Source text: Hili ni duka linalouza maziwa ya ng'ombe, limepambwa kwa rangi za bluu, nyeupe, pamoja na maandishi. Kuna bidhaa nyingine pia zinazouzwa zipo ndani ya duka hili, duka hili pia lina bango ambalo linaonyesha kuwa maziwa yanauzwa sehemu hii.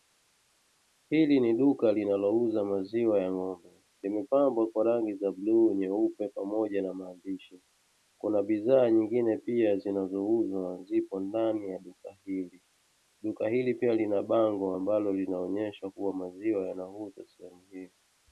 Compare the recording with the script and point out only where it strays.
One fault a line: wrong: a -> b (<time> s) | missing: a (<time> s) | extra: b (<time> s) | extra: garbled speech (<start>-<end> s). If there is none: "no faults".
no faults